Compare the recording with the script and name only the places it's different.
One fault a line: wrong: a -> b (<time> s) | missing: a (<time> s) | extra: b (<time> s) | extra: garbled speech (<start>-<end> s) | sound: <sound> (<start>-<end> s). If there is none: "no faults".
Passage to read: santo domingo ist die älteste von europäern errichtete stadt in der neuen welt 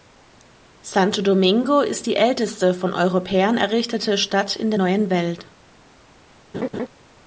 sound: laugh (6.5-6.9 s)